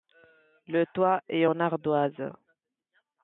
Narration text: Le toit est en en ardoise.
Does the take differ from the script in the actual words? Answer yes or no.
yes